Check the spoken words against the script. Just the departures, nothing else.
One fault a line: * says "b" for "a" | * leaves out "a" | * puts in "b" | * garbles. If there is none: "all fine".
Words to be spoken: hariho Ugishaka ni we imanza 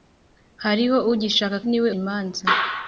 all fine